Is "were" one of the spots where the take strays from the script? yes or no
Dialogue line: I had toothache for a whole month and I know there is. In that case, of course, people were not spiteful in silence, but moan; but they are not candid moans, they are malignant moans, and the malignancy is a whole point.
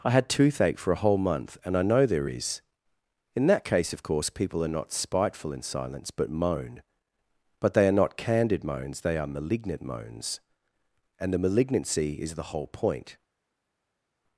yes